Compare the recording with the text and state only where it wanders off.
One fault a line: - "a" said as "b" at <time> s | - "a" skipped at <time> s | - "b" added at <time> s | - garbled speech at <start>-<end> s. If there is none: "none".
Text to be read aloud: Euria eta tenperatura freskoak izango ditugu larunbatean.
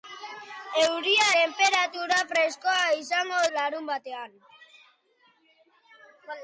- "eta" skipped at 1.2 s
- "ditugu" skipped at 3.4 s